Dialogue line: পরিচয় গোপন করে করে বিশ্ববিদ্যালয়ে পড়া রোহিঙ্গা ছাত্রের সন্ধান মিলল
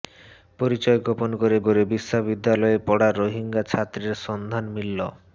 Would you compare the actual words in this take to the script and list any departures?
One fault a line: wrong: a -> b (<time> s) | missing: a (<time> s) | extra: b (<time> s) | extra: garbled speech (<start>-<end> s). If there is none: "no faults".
no faults